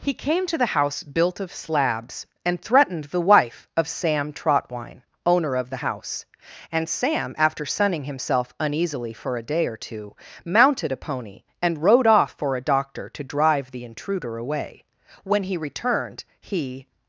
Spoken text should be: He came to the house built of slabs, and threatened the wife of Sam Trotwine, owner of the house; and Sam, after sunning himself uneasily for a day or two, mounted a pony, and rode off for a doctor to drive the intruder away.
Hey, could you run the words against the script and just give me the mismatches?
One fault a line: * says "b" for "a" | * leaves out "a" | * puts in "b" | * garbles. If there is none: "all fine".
* puts in "When he returned he"